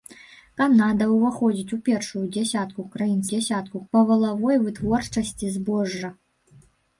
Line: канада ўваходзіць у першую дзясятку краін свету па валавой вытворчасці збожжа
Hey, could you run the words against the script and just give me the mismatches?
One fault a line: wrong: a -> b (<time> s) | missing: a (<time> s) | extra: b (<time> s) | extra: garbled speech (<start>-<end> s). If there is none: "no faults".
wrong: свету -> дзясятку (3.4 s)